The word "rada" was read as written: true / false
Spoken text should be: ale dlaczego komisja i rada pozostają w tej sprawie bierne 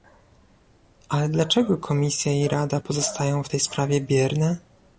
true